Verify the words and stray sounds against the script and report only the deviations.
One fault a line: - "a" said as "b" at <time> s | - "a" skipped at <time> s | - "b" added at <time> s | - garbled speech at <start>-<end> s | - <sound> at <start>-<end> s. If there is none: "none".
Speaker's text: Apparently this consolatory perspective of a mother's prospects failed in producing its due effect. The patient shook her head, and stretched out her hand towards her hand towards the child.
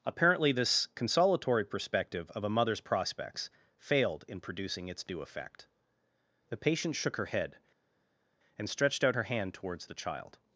- "her hand towards" skipped at 9.8 s